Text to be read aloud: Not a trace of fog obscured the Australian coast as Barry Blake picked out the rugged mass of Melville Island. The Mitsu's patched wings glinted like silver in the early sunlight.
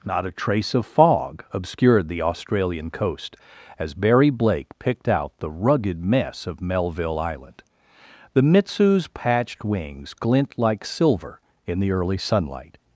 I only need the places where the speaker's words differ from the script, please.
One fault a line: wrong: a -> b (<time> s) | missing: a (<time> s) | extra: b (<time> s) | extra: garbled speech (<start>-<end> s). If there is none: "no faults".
wrong: mass -> mess (6.0 s)
wrong: glinted -> glint (10.1 s)